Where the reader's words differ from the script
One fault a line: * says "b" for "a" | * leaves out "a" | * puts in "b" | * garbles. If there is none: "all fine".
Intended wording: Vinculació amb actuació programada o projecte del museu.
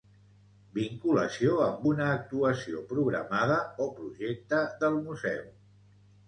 * puts in "una"